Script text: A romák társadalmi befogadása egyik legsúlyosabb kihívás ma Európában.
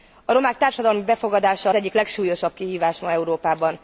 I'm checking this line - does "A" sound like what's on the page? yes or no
yes